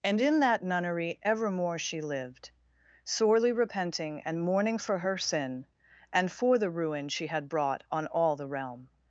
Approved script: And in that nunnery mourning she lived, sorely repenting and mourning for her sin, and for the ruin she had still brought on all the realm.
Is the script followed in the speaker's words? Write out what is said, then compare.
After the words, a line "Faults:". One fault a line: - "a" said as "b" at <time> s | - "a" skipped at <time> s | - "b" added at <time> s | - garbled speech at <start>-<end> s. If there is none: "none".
And in that nunnery evermore she lived, sorely repenting and mourning for her sin, and for the ruin she had brought on all the realm.
Faults:
- "mourning" said as "evermore" at 1.2 s
- "still" skipped at 7.5 s